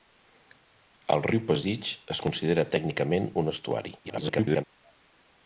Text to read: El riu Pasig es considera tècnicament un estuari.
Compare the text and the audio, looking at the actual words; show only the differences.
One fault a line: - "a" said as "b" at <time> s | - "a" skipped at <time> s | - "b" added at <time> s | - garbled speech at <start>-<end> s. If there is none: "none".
- garbled speech at 4.0-4.6 s